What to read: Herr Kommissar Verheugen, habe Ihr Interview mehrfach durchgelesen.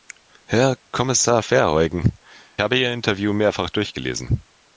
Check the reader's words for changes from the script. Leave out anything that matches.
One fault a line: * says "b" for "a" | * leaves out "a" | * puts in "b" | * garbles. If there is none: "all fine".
all fine